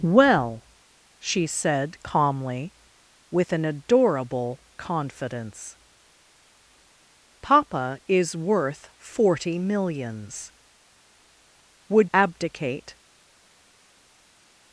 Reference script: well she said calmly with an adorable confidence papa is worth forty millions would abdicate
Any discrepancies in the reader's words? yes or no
no